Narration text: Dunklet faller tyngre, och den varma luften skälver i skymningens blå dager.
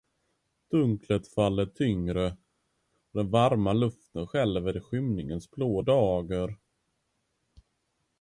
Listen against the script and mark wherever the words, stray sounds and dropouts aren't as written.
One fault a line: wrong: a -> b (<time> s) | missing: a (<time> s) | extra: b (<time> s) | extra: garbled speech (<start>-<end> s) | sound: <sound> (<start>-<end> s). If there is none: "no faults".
no faults